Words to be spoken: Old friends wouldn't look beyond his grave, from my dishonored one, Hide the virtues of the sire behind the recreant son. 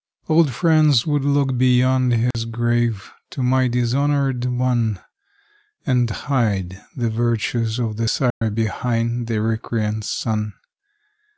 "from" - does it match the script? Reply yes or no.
no